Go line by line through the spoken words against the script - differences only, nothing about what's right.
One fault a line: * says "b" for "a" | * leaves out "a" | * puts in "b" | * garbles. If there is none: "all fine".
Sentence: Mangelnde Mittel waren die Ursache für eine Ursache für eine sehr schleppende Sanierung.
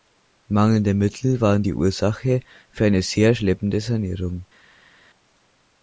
* leaves out "Ursache für eine"